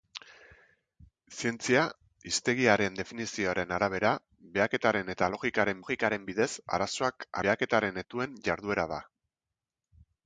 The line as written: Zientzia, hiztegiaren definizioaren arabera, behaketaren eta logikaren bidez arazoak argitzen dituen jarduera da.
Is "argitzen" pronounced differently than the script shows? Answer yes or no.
yes